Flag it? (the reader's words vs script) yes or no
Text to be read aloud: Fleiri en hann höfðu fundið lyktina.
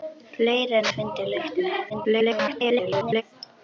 yes